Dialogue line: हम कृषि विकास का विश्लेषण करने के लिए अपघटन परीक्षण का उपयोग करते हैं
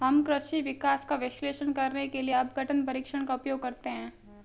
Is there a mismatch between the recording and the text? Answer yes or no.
no